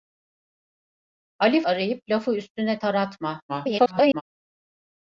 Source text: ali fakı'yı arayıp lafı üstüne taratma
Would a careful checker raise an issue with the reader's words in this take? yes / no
yes